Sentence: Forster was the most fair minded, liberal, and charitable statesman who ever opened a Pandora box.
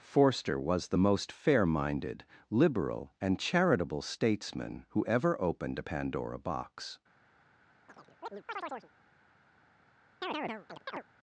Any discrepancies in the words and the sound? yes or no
yes